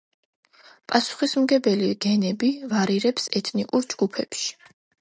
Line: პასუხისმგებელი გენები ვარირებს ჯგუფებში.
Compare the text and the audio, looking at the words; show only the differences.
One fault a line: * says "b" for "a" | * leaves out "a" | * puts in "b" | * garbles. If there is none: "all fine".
* puts in "ეთნიკურ"